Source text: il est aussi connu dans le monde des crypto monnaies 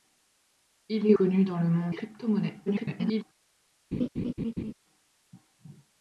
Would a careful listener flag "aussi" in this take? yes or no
yes